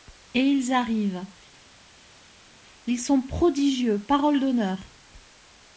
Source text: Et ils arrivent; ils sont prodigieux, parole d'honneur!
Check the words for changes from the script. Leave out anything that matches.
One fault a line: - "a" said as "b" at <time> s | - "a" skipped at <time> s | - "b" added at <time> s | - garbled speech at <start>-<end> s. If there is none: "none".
none